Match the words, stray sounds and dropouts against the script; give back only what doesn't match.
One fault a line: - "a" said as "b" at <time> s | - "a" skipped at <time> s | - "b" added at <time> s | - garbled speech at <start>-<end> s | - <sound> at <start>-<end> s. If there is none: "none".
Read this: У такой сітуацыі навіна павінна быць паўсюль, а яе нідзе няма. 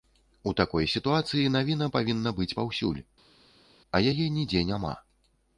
none